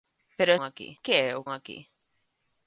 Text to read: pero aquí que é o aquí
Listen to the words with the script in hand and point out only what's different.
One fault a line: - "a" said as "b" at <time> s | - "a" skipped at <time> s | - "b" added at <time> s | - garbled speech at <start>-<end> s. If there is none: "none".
none